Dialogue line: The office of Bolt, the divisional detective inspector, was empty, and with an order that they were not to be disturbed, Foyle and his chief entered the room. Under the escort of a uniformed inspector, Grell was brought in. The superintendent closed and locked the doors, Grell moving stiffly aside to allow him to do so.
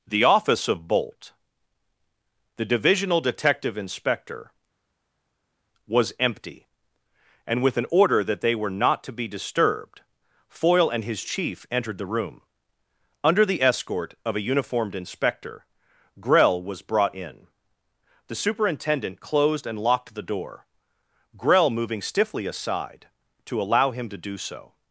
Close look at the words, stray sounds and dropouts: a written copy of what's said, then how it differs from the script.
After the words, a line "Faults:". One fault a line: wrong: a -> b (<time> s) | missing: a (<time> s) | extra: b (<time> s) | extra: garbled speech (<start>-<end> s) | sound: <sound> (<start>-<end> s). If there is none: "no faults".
The office of Bolt, the divisional detective inspector, was empty, and with an order that they were not to be disturbed, Foyle and his chief entered the room. Under the escort of a uniformed inspector, Grell was brought in. The superintendent closed and locked the door, Grell moving stiffly aside to allow him to do so.
Faults:
wrong: doors -> door (20.2 s)